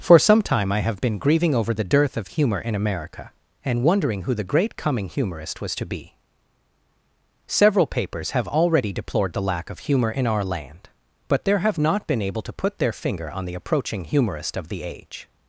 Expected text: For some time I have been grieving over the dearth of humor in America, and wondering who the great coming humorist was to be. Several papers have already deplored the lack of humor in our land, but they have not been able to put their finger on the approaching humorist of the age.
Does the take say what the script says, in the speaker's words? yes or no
no